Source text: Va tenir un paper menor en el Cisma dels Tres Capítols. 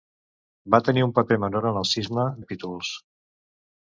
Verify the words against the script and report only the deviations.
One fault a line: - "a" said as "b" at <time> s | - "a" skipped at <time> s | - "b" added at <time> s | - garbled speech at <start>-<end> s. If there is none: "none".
- "dels Tres" skipped at 2.2 s